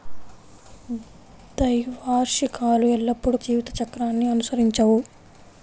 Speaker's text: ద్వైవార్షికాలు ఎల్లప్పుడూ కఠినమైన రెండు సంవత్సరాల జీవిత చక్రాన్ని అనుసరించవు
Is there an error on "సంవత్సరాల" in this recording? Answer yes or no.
yes